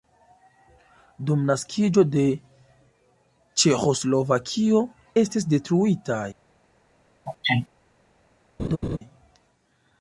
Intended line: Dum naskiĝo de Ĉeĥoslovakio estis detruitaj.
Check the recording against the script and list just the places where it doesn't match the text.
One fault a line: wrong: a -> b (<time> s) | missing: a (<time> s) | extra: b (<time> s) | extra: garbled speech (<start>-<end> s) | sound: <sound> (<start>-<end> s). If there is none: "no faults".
sound: sneeze (7.3-7.7 s)
sound: laugh (8.6-9.0 s)